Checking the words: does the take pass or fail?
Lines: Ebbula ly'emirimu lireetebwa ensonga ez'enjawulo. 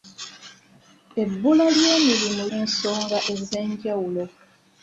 fail